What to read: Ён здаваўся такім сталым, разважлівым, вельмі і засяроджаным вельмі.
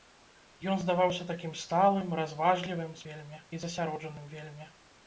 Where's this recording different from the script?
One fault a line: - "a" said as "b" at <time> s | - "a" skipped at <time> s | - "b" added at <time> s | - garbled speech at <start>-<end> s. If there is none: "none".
none